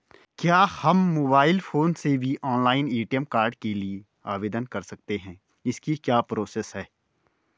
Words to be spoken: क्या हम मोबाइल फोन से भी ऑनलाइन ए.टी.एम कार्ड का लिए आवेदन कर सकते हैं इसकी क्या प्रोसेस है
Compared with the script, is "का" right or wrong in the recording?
wrong